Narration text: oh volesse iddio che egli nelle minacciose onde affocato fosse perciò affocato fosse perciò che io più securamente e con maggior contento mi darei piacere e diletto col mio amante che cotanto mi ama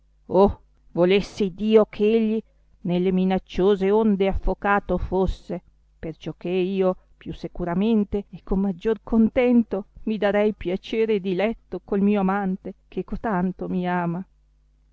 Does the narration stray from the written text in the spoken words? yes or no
yes